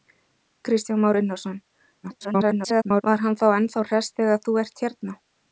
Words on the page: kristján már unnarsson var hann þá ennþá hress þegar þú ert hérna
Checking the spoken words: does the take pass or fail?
fail